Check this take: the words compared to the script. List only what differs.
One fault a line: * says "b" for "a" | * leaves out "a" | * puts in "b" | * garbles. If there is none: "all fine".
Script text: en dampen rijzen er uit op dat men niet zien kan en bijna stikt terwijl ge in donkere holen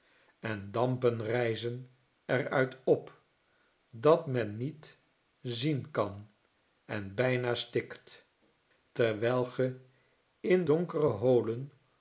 all fine